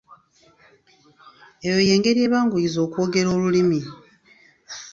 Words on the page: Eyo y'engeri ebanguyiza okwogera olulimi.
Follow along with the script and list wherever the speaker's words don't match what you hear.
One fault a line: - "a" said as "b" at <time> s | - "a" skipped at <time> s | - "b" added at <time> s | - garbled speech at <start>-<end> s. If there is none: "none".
none